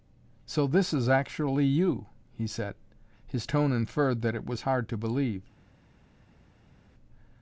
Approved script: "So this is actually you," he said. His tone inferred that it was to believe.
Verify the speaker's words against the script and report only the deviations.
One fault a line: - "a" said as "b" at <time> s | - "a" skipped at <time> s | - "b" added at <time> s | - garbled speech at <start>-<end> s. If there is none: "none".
- "hard" added at 4.6 s